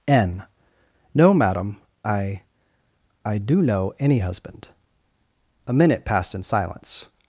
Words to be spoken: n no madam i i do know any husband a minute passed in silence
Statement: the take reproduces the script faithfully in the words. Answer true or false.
true